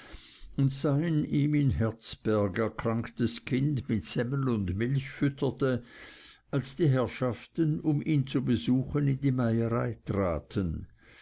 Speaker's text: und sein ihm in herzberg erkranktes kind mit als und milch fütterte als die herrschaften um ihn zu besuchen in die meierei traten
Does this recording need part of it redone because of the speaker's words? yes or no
yes